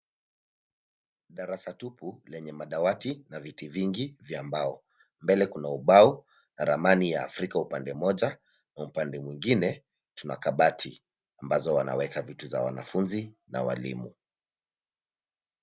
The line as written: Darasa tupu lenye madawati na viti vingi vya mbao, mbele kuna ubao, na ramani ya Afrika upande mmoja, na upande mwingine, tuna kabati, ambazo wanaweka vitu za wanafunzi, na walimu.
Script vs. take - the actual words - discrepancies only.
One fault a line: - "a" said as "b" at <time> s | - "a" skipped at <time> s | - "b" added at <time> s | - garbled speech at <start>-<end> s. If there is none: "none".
none